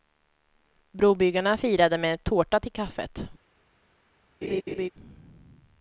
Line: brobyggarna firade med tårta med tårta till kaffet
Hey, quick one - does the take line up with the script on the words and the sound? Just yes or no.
no